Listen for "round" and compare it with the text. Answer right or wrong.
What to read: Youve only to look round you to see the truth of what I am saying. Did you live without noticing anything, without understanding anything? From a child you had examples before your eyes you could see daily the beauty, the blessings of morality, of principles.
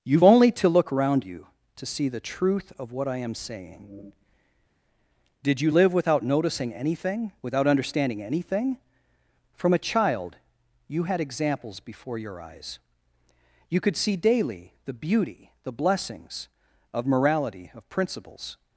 wrong